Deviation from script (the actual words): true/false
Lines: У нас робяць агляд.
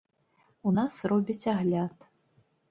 false